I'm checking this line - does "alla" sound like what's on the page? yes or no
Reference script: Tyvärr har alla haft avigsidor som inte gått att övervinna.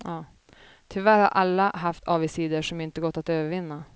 yes